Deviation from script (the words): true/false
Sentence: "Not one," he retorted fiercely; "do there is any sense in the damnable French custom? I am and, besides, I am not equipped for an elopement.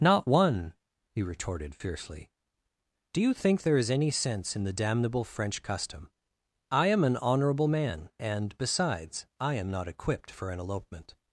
true